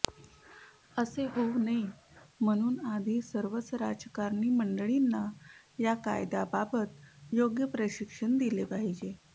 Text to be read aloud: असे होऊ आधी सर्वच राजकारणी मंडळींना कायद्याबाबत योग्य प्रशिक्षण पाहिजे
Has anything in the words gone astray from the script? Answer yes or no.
yes